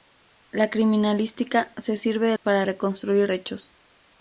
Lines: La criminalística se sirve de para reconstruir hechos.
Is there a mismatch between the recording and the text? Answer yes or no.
no